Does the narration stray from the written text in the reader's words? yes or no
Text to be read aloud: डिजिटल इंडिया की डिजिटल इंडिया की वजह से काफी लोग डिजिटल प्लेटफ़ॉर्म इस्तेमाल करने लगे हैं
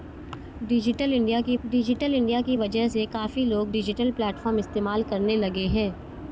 no